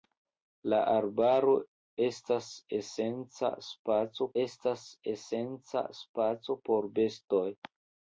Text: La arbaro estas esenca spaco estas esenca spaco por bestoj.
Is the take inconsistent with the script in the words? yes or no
no